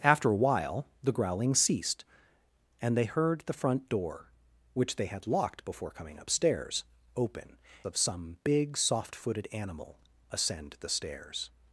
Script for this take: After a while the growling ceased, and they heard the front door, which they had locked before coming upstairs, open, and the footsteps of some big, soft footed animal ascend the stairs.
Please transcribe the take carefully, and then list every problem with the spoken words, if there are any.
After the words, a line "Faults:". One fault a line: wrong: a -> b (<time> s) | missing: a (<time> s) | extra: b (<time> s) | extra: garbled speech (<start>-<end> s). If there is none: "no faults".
After a while the growling ceased, and they heard the front door, which they had locked before coming upstairs, open, of some big, soft footed animal ascend the stairs.
Faults:
missing: and the footsteps (7.6 s)